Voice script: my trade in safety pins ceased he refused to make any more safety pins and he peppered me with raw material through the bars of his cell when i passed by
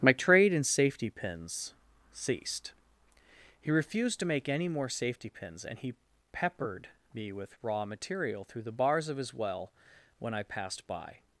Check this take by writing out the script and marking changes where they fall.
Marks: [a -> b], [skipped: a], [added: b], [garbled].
my trade in safety pins ceased he refused to make any more safety pins and he peppered me with raw material through the bars of his [cell -> well] when i passed by